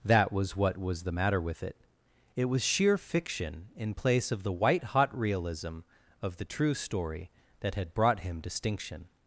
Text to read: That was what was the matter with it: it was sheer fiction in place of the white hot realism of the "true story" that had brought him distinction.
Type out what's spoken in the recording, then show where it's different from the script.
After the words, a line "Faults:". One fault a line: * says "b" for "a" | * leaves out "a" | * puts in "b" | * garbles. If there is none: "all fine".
That was what was the matter with it: it was sheer fiction in place of the white hot realism of the "true story" that had brought him distinction.
Faults:
all fine